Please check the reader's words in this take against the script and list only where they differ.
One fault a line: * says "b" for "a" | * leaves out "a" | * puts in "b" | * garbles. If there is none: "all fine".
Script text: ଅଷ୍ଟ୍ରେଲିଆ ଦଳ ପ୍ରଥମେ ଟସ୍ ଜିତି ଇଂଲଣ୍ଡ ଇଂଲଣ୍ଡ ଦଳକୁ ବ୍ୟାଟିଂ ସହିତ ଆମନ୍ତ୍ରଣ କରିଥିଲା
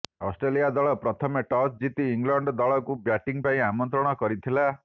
* leaves out "ଇଂଲଣ୍ଡ"
* says "ପାଇଁ" for "ସହିତ"